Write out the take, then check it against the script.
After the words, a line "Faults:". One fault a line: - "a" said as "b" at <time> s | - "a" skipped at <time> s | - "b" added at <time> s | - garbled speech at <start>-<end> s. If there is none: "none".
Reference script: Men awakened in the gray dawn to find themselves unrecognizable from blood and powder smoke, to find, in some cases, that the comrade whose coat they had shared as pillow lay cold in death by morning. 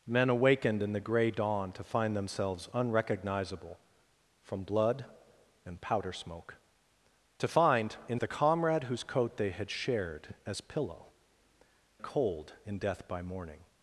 Men awakened in the gray dawn to find themselves unrecognizable from blood and powder smoke, to find, in the comrade whose coat they had shared as pillow cold in death by morning.
Faults:
- "some cases that" skipped at 8.2 s
- "lay" skipped at 11.1 s